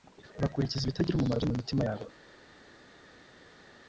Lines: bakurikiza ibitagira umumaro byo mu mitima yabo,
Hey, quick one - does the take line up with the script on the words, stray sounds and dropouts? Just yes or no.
yes